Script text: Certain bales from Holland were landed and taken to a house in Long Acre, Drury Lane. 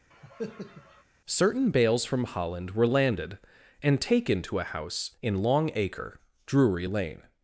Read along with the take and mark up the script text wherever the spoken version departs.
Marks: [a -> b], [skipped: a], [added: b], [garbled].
Certain bales from Holland were landed and taken to a house in Long Acre, Drury Lane.